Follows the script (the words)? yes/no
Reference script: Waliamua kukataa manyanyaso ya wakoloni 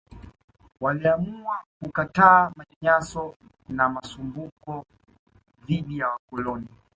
no